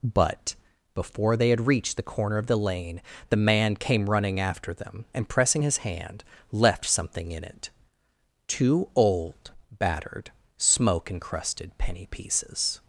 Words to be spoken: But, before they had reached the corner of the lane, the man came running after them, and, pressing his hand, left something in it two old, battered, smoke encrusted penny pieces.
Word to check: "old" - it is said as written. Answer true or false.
true